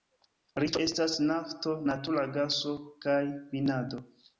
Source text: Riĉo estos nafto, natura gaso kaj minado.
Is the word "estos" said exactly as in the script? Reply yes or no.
no